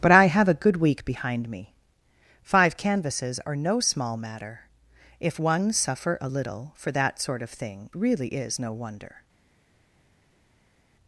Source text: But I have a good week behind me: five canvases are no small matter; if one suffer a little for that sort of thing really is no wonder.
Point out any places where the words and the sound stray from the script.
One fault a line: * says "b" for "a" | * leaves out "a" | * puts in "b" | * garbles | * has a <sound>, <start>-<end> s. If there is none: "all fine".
all fine